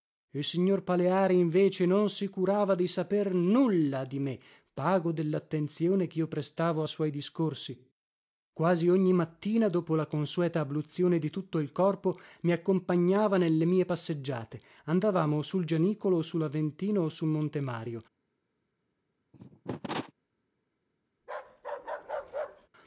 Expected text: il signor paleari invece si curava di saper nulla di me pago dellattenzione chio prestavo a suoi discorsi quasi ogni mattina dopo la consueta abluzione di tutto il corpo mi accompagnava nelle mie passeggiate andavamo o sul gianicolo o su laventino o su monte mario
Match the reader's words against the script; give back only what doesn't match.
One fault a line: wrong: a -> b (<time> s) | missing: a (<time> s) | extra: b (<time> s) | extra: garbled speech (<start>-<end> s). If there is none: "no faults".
extra: non (1.9 s)